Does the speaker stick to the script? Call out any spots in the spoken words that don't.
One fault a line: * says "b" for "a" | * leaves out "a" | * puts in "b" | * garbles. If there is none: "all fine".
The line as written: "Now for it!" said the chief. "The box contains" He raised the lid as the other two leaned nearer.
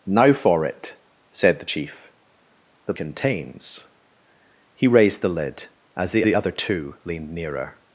* leaves out "box"
* puts in "the"